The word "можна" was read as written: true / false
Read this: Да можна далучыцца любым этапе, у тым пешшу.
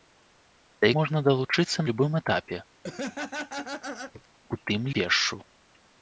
true